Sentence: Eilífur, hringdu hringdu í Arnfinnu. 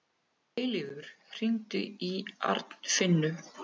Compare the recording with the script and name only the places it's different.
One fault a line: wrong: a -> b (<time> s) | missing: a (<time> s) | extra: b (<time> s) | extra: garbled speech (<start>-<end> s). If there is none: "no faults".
missing: hringdu (1.9 s)